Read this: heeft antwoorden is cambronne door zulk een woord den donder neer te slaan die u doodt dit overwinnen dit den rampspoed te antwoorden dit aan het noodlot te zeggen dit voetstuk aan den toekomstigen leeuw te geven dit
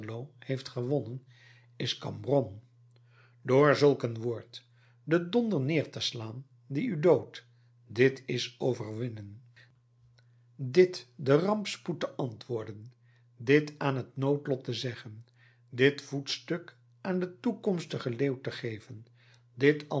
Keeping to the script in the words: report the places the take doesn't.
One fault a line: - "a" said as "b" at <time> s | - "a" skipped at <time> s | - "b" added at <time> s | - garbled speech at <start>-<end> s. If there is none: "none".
- "antwoorden" said as "gewonnen" at 0.7 s
- "is" added at 8.2 s